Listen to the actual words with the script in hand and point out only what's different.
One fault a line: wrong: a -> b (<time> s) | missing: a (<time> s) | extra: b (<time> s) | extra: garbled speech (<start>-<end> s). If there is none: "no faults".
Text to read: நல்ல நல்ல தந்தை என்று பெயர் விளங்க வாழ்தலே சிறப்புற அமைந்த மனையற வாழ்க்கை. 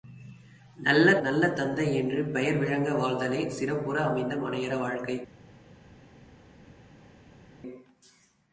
no faults